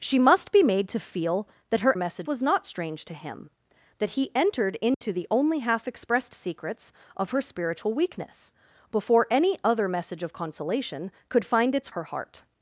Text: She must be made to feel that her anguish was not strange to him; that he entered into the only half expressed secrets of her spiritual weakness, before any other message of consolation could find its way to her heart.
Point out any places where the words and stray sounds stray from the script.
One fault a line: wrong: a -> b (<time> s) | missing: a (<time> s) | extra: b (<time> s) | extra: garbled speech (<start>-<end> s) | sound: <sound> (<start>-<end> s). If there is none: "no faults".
wrong: anguish -> message (1.9 s)
sound: dropout (4.9-5.0 s)
missing: way to (11.9 s)